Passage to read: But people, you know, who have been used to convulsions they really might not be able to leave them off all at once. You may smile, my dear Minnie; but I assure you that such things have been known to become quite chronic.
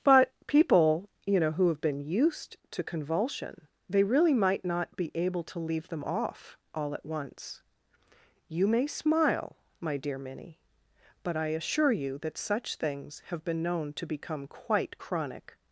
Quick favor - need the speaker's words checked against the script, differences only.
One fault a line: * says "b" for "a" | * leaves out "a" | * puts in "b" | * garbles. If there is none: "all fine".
* says "convulsion" for "convulsions"